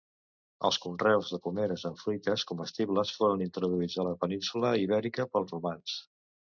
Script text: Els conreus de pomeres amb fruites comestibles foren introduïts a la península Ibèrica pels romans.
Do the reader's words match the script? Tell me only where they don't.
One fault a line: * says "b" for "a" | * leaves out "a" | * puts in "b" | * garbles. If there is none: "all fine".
all fine